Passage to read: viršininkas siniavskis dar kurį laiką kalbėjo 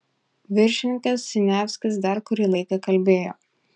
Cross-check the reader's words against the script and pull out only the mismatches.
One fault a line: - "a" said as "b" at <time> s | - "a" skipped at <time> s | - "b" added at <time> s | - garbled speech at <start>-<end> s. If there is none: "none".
none